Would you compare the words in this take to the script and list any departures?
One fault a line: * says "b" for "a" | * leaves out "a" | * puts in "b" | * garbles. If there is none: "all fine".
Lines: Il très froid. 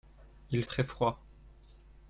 all fine